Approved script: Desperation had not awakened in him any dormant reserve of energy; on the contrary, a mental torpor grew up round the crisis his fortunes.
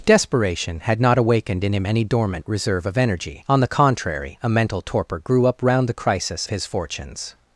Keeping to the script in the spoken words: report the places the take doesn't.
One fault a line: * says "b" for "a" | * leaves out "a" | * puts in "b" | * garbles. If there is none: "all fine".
all fine